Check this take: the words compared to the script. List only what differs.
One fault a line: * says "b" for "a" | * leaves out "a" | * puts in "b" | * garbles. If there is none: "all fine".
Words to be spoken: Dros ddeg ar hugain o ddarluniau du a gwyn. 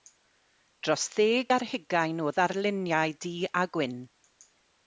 all fine